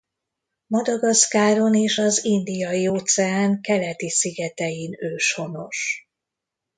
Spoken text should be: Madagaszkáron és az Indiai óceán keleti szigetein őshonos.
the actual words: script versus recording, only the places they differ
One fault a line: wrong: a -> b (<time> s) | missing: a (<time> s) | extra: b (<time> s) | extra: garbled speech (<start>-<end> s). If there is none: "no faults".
no faults